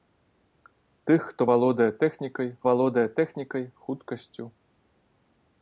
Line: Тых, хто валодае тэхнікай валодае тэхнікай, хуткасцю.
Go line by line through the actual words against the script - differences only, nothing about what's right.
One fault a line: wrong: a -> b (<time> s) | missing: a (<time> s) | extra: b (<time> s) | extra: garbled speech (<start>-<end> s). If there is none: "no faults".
no faults